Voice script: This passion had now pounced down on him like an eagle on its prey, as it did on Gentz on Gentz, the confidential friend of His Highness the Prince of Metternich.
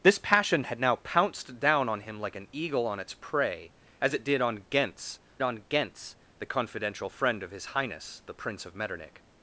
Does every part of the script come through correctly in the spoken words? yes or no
yes